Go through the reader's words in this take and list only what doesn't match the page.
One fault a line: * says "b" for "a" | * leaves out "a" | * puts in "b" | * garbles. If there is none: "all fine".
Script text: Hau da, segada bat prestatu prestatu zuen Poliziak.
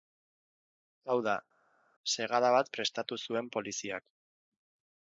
* leaves out "prestatu"